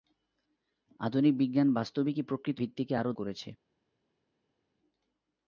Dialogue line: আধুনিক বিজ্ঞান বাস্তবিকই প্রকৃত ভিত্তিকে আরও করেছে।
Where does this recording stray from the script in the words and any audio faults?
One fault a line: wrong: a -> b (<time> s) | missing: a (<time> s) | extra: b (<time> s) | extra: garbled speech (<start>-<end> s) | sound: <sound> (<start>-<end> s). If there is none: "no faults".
no faults